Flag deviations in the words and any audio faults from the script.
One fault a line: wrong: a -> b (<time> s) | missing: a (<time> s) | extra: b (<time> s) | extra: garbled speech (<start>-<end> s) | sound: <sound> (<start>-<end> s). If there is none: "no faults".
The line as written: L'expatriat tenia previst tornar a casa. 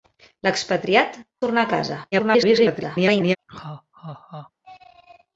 missing: tenia previst (1.2 s)
extra: garbled speech (2.1-3.4 s)
sound: laugh (3.5-4.5 s)